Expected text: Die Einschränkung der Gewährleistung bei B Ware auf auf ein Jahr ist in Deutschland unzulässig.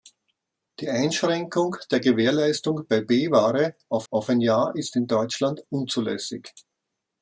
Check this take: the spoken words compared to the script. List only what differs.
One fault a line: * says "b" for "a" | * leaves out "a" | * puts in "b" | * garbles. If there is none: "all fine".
all fine